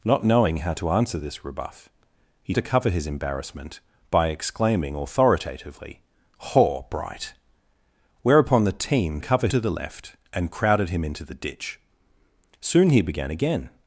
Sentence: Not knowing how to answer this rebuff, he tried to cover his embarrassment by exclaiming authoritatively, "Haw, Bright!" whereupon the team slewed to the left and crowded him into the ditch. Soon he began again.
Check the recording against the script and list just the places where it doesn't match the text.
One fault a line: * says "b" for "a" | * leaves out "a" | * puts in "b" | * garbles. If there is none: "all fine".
* leaves out "tried"
* says "cover" for "slewed"